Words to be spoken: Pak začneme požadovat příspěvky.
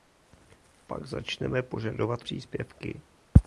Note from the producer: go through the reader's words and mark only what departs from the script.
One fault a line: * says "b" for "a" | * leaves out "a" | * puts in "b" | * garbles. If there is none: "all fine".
all fine